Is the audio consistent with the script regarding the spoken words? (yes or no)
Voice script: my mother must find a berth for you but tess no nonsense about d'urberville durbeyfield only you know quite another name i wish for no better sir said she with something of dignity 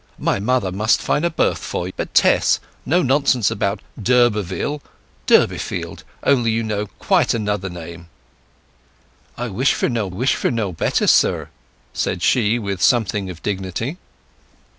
no